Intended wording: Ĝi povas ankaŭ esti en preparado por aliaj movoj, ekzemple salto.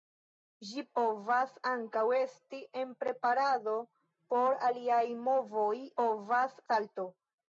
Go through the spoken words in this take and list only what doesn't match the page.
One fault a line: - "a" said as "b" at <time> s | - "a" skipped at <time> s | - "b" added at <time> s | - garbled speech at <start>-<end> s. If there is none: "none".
- "ekzemple" said as "povas" at 6.0 s